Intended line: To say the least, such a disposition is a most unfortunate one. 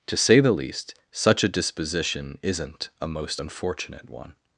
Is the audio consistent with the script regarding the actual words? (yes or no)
no